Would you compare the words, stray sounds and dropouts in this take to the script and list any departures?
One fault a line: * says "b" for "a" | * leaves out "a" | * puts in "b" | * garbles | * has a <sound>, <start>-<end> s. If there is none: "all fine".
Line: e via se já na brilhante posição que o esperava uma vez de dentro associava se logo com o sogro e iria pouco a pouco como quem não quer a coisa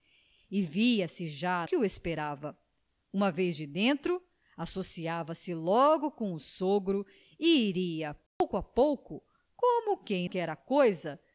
* leaves out "na brilhante posição"
* has a dropout, 8.3-8.4 s
* leaves out "não"